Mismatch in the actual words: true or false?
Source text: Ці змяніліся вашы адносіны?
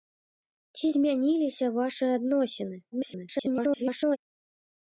true